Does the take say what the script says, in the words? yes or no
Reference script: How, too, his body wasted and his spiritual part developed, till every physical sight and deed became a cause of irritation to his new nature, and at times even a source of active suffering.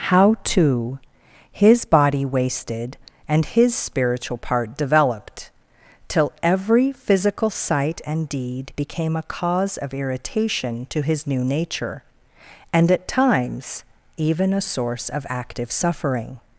yes